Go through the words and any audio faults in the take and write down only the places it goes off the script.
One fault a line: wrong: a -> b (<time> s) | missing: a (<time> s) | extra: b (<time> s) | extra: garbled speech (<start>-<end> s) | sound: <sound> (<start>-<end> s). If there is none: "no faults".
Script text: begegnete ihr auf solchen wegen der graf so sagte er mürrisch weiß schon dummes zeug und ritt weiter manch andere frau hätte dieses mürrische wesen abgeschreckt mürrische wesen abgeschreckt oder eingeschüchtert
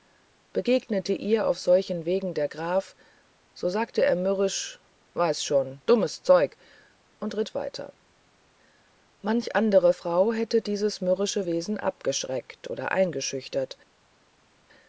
missing: mürrische wesen abgeschreckt (12.7 s)